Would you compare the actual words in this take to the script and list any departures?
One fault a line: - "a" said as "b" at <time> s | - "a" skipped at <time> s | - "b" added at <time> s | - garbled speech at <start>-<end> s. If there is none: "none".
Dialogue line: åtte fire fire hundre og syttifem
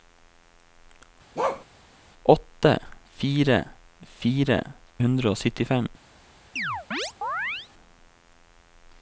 none